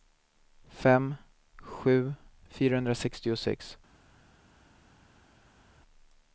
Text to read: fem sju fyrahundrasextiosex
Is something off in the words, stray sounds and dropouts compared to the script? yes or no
no